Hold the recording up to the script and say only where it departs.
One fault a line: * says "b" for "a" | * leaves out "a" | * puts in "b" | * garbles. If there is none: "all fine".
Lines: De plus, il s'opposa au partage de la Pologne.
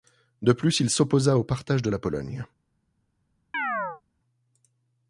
all fine